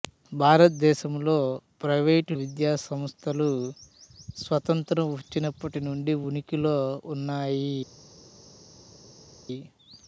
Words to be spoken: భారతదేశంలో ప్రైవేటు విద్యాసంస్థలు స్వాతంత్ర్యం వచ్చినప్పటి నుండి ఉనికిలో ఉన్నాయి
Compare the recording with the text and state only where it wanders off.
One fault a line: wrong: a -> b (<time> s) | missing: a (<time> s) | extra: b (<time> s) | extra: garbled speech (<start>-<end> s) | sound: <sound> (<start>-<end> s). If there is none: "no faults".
no faults